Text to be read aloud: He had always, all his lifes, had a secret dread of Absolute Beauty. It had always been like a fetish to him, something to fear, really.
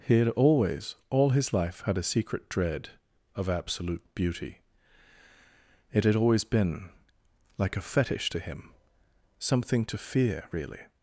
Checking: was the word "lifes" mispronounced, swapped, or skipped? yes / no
yes